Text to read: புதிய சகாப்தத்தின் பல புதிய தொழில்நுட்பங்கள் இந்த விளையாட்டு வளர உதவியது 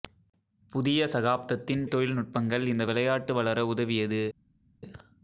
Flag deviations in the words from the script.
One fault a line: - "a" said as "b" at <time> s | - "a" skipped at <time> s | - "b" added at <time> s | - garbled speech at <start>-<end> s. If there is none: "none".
- "பல புதிய" skipped at 1.8 s